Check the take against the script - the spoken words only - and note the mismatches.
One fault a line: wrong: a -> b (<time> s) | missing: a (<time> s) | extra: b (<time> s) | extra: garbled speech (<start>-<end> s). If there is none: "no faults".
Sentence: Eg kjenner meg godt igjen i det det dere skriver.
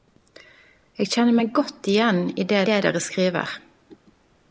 no faults